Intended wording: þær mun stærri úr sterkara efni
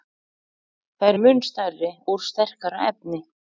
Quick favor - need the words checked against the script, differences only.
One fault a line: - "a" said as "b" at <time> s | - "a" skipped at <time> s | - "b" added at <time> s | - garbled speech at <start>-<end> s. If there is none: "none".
none